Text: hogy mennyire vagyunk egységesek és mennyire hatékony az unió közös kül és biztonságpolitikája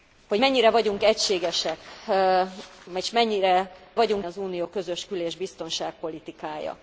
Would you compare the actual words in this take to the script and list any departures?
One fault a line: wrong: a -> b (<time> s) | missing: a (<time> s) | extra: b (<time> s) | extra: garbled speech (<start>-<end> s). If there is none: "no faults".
wrong: hatékony -> vagyunk (3.9 s)